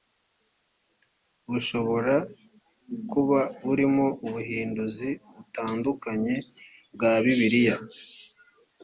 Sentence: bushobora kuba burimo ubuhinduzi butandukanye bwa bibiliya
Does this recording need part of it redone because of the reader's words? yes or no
no